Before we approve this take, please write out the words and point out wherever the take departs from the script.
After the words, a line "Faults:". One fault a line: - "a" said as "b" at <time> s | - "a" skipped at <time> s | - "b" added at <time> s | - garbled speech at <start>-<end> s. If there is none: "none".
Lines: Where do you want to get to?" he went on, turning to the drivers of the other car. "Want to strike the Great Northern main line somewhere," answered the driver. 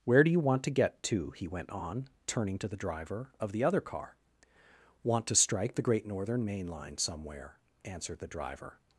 Where do you want to get to?" he went on, turning to the driver of the other car. "Want to strike the Great Northern main line somewhere," answered the driver.
Faults:
- "drivers" said as "driver" at 2.8 s